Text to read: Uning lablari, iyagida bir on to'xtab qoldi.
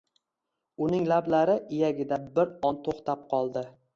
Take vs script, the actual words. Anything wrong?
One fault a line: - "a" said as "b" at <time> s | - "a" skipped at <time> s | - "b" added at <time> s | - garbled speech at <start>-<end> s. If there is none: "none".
none